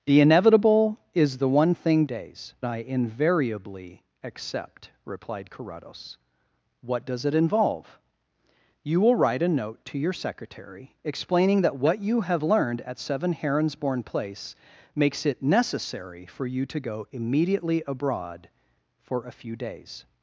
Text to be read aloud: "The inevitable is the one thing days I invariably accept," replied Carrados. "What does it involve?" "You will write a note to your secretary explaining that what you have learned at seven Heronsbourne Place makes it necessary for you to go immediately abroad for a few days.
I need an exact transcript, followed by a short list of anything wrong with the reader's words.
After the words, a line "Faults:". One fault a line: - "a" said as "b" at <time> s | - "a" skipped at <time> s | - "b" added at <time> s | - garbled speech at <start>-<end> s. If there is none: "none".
"The inevitable is the one thing days I invariably accept," replied Carrados. "What does it involve?" "You will write a note to your secretary explaining that what you have learned at seven Heronsbourne Place makes it necessary for you to go immediately abroad for a few days.
Faults:
none